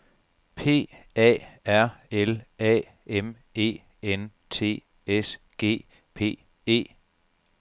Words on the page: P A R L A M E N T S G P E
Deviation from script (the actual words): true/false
false